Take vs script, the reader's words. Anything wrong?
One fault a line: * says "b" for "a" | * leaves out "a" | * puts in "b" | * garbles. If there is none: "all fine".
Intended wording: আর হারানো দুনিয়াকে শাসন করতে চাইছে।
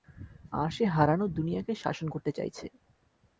* puts in "সে"